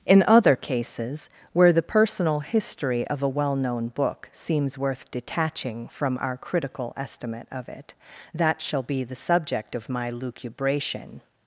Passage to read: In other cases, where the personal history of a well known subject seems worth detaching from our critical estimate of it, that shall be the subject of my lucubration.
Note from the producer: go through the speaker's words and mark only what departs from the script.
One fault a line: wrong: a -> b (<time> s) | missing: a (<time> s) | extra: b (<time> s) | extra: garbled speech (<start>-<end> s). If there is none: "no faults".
wrong: subject -> book (3.9 s)